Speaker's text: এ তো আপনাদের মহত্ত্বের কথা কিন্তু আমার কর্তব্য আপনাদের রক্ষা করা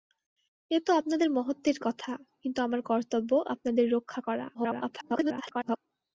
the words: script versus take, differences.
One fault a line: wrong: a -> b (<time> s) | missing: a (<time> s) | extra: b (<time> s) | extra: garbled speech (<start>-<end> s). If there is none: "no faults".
extra: garbled speech (4.5-5.8 s)